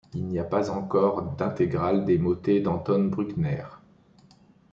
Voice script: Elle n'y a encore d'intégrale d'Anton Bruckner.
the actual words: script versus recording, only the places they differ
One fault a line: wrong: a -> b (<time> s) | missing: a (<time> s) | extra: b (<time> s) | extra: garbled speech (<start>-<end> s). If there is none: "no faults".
wrong: Elle -> Il (0.1 s)
extra: pas (0.4 s)
extra: des motets (2.0 s)